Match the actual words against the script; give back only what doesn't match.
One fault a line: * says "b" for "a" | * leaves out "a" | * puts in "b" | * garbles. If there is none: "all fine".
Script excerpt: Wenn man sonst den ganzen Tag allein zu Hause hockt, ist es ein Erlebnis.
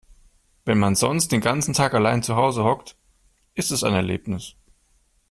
all fine